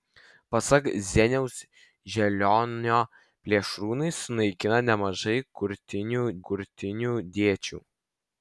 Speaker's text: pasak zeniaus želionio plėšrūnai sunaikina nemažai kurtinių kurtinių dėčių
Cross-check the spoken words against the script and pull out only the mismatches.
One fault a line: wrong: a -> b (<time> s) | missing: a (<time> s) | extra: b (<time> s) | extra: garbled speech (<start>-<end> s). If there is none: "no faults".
no faults